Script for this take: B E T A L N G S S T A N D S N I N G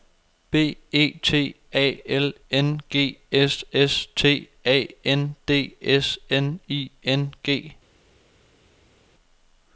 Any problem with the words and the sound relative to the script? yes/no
no